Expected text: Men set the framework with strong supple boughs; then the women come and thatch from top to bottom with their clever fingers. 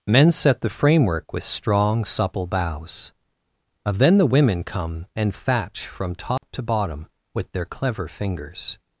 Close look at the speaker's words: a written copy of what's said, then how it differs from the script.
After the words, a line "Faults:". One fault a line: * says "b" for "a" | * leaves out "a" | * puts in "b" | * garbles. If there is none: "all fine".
Men set the framework with strong supple boughs; of then the women come and thatch from top to bottom with their clever fingers.
Faults:
* puts in "of"